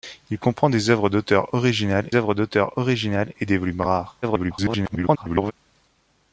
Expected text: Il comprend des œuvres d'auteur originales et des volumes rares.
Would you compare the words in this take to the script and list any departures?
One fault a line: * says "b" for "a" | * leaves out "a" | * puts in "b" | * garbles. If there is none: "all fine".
* puts in "œuvres d'auteur originales"
* garbles